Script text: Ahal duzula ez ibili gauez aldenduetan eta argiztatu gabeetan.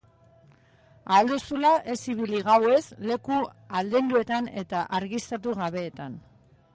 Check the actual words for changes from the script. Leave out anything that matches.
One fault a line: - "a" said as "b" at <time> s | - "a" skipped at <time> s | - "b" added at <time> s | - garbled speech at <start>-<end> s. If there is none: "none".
- "leku" added at 3.1 s